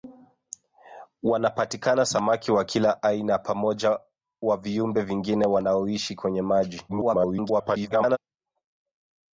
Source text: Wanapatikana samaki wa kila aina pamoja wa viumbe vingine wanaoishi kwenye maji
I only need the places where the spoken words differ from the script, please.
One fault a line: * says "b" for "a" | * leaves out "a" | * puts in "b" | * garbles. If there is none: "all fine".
* garbles